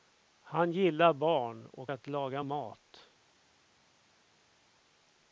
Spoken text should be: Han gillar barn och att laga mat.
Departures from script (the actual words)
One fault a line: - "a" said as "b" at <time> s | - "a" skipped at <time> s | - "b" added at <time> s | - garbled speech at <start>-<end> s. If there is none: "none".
none